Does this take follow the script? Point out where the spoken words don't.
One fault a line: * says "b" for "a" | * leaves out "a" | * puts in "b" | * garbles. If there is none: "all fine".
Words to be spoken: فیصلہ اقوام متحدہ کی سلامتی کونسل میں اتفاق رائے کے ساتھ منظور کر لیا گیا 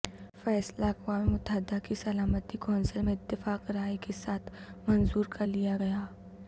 all fine